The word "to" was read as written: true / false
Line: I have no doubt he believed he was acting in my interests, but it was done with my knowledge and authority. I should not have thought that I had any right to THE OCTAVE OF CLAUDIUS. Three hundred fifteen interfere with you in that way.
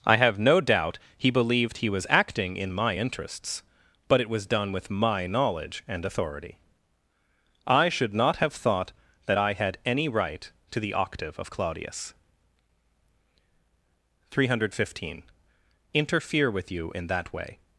true